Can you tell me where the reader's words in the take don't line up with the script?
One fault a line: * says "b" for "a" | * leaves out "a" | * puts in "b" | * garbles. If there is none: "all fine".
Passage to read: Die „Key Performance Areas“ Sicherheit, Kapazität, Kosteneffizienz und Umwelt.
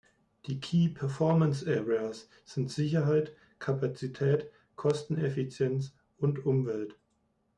* puts in "sind"